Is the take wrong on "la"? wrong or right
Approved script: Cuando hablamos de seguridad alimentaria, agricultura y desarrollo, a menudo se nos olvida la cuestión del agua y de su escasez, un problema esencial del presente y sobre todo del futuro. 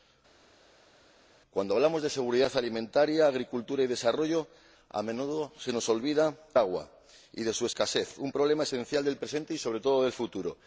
wrong